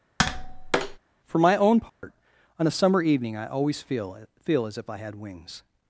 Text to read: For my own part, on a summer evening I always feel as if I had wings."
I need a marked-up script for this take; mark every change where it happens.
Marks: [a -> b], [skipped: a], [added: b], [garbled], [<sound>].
[tap] For my own part, [dropout] on a summer evening I always feel [added: feel] as if I had wings."